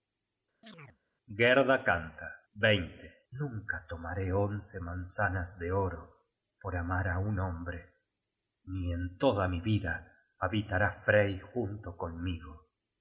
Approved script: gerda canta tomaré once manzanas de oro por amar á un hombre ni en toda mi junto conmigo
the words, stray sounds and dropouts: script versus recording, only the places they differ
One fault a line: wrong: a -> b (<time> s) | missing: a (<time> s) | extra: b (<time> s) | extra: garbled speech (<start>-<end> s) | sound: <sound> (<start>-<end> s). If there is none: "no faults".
sound: chirp (0.6-1.0 s)
extra: nunca (3.3 s)
extra: vida habitará frey (9.6 s)